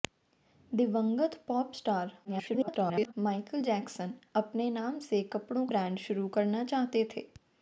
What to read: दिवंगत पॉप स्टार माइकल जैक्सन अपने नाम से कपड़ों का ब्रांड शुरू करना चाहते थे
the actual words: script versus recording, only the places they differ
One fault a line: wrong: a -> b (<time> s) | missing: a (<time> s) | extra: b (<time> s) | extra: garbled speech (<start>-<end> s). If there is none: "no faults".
extra: garbled speech (2.2-3.1 s)
missing: का (5.7 s)